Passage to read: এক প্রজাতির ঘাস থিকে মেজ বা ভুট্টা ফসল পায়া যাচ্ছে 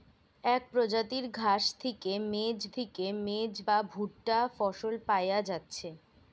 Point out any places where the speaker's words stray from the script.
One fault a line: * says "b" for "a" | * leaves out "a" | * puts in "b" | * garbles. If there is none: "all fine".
* puts in "থিকে মেজ"